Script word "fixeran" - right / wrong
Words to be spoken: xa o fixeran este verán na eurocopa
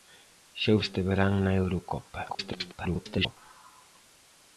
wrong